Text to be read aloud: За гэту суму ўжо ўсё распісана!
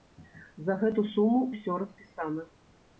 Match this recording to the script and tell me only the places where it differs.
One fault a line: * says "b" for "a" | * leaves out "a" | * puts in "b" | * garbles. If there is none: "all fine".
* leaves out "ўжо"